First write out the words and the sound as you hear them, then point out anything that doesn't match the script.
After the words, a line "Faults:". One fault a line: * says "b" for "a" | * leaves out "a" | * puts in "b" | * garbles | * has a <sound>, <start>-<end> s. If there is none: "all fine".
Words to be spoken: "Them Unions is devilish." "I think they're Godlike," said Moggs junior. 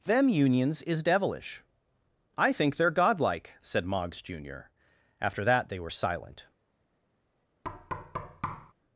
"Them Unions is devilish." "I think they're Godlike," said Moggs junior. After that they were silent
Faults:
* puts in "After that they were silent"
* has a thud, 7.6-8.7 s